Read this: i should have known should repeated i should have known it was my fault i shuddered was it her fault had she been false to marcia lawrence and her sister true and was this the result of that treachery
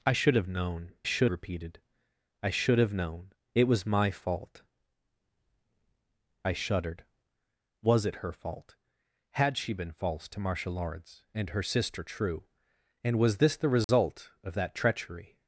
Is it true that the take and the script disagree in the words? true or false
false